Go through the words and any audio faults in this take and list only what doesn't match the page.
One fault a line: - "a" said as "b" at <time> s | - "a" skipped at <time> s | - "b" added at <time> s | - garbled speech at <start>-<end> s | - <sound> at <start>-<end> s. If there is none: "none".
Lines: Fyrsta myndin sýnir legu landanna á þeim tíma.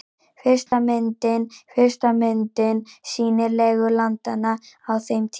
- dropout at 0.7-0.7 s
- "fyrsta myndin" added at 1.7 s